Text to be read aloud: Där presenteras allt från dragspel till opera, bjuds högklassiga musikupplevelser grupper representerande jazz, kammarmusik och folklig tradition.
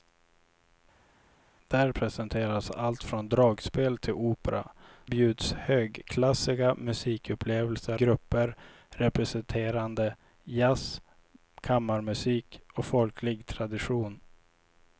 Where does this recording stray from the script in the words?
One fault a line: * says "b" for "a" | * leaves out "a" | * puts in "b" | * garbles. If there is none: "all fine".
all fine